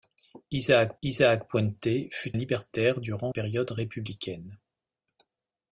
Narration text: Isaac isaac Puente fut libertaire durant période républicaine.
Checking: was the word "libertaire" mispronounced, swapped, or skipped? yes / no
no